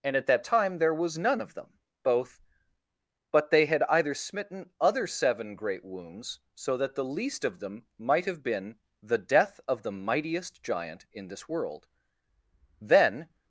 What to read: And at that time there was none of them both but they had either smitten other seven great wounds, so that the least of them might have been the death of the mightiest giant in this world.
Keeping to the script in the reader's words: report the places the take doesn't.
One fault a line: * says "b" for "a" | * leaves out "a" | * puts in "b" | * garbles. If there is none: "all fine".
* puts in "Then"